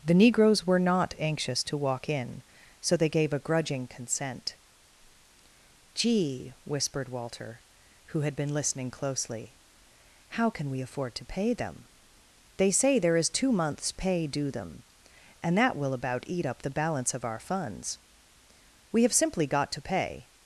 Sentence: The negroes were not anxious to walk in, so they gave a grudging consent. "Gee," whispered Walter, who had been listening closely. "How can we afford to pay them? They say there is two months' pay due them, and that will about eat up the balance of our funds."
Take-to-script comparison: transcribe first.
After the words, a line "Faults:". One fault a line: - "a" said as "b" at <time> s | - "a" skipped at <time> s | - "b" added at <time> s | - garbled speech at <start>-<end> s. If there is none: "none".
The negroes were not anxious to walk in, so they gave a grudging consent. "Gee," whispered Walter, who had been listening closely. "How can we afford to pay them? They say there is two months' pay due them, and that will about eat up the balance of our funds." "We have simply got to pay
Faults:
- "We have simply got to pay" added at 18.9 s